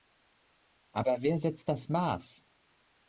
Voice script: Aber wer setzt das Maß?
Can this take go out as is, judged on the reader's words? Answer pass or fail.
pass